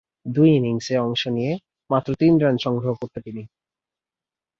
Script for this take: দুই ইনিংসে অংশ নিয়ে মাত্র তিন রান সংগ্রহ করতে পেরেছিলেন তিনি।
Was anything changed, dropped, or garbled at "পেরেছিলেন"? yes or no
yes